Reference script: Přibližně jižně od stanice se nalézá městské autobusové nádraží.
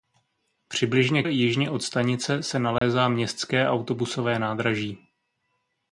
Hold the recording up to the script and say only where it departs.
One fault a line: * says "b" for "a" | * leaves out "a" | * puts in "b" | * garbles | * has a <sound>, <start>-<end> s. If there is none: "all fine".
* has a dropout, 2.8-2.8 s